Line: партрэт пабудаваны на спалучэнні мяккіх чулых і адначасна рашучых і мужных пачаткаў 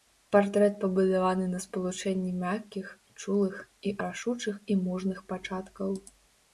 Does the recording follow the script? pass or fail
fail